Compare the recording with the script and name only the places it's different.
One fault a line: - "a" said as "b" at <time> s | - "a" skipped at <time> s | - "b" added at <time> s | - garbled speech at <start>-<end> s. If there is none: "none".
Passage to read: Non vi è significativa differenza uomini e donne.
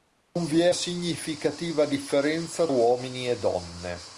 none